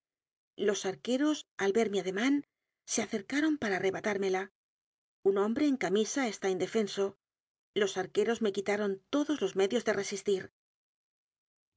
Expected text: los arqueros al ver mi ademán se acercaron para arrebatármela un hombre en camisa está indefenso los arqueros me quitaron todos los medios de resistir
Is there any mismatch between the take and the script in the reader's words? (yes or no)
no